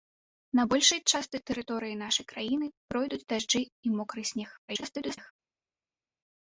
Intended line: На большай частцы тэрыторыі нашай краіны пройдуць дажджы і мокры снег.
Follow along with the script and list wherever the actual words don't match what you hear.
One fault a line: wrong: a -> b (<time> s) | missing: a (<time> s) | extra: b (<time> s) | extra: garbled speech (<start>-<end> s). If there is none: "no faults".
extra: garbled speech (4.7-5.3 s)